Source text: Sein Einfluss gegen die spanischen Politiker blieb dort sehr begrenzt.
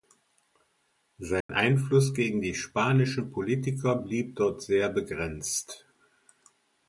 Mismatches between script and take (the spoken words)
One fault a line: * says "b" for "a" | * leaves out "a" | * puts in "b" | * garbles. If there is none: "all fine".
all fine